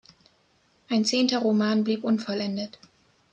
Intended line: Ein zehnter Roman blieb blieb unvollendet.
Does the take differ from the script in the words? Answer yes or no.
yes